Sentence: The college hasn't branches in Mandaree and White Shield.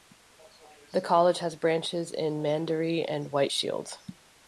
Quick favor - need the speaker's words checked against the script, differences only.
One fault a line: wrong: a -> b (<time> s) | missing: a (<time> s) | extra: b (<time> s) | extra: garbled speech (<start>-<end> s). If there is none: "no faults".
wrong: hasn't -> has (1.4 s)